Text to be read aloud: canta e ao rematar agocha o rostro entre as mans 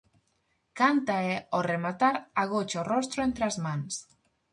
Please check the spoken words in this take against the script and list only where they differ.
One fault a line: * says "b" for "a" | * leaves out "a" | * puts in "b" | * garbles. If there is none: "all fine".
all fine